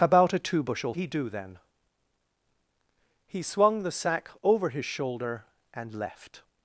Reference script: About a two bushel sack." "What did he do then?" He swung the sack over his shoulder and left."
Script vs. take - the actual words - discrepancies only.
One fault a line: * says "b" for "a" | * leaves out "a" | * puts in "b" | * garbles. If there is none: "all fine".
* leaves out "sack What did"